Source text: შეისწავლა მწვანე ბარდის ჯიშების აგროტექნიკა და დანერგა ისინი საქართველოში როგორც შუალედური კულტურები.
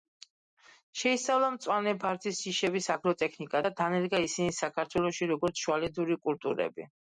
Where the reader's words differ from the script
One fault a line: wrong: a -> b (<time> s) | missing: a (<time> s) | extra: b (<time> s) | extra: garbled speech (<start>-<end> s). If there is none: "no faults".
no faults